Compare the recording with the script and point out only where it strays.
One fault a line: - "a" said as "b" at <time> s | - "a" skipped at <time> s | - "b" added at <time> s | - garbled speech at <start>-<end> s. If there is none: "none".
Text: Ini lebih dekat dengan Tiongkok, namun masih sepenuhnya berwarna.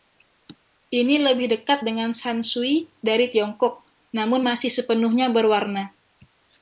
- "shan shui dari" added at 2.1 s